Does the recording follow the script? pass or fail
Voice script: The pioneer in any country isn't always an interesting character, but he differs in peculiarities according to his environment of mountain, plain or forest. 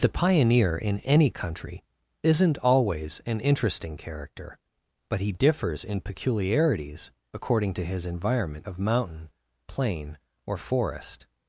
pass